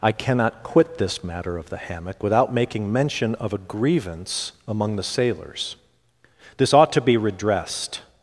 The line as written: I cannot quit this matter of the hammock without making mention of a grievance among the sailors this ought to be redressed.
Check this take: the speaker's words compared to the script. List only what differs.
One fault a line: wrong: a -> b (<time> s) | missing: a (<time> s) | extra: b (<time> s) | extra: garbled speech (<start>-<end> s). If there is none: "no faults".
no faults